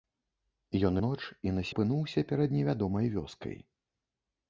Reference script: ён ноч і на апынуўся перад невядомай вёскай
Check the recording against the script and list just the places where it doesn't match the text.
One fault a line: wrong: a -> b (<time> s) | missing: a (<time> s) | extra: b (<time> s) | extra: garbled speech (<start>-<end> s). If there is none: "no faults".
no faults